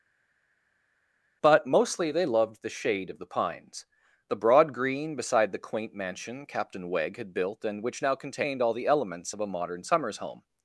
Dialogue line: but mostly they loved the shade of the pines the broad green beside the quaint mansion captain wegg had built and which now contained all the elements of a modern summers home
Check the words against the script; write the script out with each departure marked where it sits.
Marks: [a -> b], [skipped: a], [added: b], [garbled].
but mostly they loved the shade of the pines the broad green beside the quaint mansion captain wegg had built and which now contained all the elements of a modern summers home